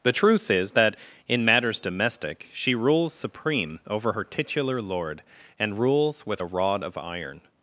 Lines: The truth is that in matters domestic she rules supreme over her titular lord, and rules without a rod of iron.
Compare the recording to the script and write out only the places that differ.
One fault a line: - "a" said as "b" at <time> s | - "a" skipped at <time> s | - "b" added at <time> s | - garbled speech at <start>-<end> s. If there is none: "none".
- "without" said as "with" at 6.2 s